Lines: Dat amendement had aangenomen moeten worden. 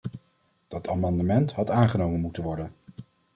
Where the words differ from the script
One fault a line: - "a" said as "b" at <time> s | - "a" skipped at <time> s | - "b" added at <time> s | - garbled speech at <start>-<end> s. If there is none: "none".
none